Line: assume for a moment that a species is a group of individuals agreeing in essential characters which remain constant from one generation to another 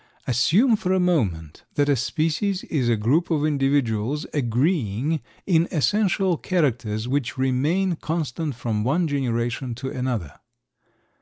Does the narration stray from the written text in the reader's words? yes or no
no